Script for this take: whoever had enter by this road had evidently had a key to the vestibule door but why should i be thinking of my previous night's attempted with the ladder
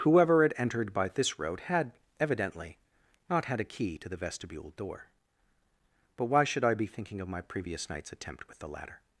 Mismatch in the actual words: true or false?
true